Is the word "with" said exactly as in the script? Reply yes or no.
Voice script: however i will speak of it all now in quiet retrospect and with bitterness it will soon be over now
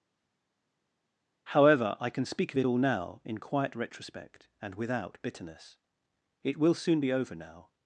no